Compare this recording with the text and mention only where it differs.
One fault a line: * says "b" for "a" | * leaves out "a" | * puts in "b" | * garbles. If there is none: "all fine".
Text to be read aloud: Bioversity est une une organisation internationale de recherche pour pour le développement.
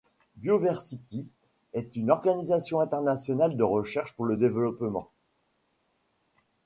* leaves out "une"
* leaves out "pour"